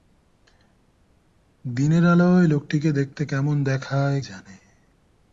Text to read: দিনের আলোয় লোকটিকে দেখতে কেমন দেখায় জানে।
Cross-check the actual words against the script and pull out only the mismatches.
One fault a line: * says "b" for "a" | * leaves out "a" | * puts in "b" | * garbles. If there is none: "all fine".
all fine